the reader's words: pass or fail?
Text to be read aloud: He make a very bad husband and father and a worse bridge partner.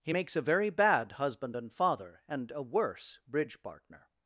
fail